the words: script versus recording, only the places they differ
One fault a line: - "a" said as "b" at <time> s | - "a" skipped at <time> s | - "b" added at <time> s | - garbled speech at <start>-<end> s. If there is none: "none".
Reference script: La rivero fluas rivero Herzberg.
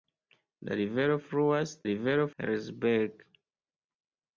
none